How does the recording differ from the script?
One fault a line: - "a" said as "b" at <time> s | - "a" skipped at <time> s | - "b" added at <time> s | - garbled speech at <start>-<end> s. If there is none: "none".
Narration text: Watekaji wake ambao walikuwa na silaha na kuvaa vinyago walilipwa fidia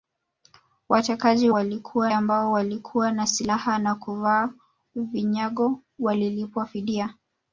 - "wake" said as "walikuwa" at 1.5 s